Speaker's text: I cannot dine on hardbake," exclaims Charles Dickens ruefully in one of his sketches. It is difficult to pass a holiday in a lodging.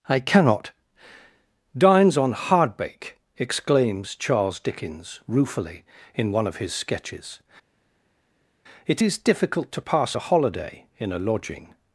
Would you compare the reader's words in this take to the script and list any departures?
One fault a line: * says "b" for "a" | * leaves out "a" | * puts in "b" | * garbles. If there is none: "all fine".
* says "dines" for "dine"